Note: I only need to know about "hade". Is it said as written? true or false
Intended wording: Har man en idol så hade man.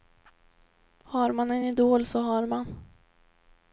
false